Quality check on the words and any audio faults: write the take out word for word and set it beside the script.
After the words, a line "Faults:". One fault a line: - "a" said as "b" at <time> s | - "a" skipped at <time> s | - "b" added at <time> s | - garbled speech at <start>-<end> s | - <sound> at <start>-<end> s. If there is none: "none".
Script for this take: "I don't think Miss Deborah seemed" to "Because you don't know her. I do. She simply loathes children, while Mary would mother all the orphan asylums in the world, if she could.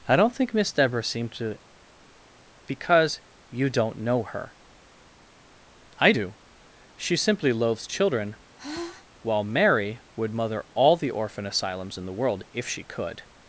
"I don't think Miss Deborah seemed" to "Because you don't know her. I do. She simply loathes children, while Mary would mother all the orphan asylums in the world, if she could.
Faults:
- sigh at 8.6-9.1 s